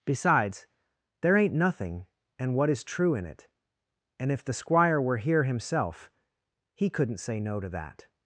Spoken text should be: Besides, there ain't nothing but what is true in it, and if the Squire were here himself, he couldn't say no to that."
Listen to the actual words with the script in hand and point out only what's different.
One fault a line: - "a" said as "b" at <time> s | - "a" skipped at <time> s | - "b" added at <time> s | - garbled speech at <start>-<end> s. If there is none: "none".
- "but" said as "and" at 2.4 s